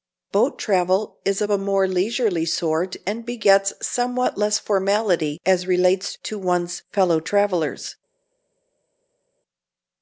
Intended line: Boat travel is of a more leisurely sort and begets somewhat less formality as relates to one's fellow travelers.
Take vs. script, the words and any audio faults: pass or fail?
pass